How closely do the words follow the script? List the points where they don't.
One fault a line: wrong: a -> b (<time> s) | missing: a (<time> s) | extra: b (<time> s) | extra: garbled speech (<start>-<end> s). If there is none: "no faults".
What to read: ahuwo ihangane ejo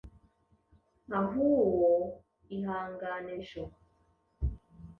no faults